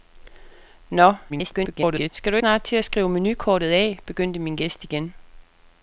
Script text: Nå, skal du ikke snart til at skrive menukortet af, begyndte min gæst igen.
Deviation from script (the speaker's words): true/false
true